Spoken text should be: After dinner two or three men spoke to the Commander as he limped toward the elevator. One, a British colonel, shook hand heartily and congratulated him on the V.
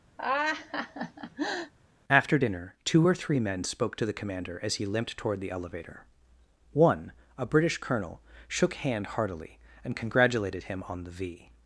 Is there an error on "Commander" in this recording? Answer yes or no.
no